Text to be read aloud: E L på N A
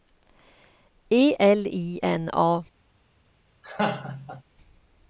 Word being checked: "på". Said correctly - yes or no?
no